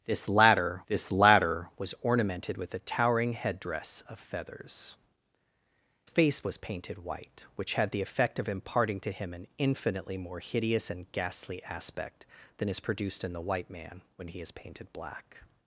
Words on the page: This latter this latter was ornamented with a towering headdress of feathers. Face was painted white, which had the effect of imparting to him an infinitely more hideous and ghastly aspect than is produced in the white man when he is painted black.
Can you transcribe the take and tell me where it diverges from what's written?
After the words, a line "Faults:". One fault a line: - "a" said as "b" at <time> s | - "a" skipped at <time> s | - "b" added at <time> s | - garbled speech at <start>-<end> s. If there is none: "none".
This latter this latter was ornamented with a towering headdress of feathers. Face was painted white, which had the effect of imparting to him an infinitely more hideous and ghastly aspect than is produced in the white man when he is painted black.
Faults:
none